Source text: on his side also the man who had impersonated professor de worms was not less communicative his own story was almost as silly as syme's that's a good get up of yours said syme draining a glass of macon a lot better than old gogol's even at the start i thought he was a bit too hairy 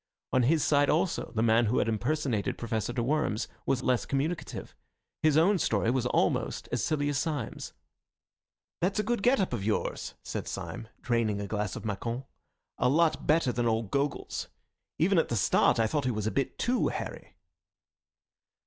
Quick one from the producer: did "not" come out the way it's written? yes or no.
no